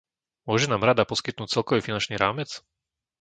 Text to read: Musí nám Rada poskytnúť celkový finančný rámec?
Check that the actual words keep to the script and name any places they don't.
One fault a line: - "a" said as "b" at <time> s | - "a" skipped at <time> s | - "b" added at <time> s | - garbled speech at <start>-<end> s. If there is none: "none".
- "Musí" said as "Môže" at 0.5 s